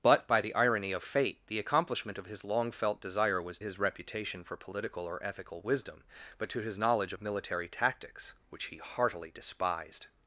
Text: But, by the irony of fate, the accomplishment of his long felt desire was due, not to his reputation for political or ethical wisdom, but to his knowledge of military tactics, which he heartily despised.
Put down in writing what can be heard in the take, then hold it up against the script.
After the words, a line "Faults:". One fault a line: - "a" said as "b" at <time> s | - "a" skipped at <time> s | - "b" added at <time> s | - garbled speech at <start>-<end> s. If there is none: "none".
But, by the irony of fate, the accomplishment of his long felt desire was his reputation for political or ethical wisdom, but to his knowledge of military tactics, which he heartily despised.
Faults:
- "due not to" skipped at 3.6 s